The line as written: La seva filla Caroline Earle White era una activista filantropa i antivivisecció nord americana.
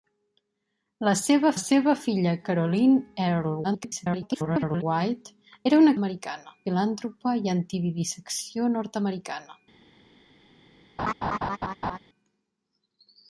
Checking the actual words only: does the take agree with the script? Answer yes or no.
no